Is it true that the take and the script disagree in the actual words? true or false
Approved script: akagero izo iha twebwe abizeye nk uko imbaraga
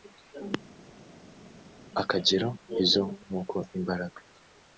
true